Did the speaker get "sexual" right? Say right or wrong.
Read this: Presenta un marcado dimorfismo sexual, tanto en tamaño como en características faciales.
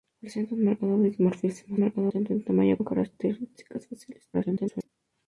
wrong